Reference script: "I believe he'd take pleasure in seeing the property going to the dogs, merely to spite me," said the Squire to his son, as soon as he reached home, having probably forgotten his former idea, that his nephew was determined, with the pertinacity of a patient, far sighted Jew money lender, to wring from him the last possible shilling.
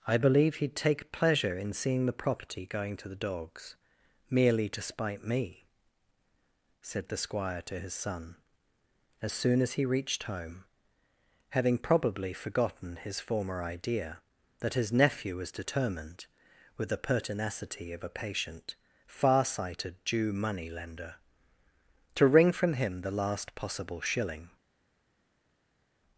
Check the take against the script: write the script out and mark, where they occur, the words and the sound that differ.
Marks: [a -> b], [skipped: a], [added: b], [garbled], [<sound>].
"I believe he'd take pleasure in seeing the property going to the dogs, merely to spite me," said the Squire to his son, as soon as he reached home, having probably forgotten his former idea, that his nephew was determined, with the pertinacity of a patient, far sighted Jew money lender, to wring from him the last possible shilling.